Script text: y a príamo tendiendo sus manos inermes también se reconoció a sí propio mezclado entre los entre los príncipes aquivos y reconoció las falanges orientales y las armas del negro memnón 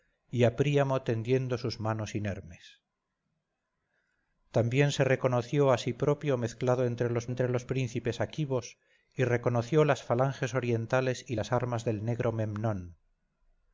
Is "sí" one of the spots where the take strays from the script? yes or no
no